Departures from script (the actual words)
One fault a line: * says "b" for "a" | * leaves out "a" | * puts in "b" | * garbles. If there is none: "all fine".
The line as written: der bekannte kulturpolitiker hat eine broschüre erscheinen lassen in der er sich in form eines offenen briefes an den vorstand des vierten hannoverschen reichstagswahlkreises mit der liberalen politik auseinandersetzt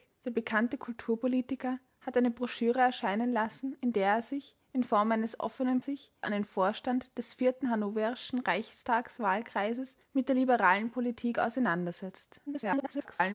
* says "sich" for "briefes"
* garbles